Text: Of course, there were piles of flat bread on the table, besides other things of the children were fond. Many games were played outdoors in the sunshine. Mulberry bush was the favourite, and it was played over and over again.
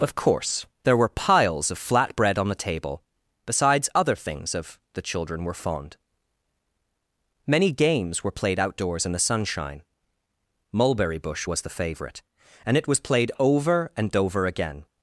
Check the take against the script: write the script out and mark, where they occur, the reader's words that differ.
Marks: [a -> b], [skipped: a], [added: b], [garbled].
Of course, there were piles of flat bread on the table, besides other things of the children were fond. Many games were played outdoors in the sunshine. Mulberry bush was the favourite, and it was played over and over again.